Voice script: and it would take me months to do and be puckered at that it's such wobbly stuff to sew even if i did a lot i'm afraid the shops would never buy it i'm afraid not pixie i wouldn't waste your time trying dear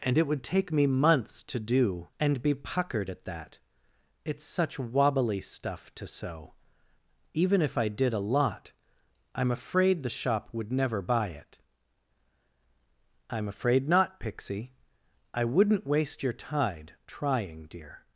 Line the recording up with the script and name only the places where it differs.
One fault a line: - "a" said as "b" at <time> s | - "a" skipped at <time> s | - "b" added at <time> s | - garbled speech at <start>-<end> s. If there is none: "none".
- "shops" said as "shop" at 10.1 s
- "time" said as "tide" at 16.3 s